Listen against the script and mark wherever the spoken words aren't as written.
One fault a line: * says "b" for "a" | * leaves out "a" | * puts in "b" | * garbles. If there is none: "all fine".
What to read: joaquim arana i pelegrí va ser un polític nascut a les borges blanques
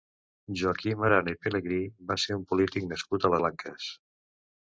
* leaves out "les borges"